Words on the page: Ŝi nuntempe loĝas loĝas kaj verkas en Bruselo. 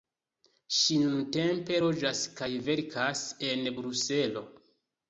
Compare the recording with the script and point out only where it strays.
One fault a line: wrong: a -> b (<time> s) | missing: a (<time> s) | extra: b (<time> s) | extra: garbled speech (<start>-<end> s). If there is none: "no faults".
missing: loĝas (2.2 s)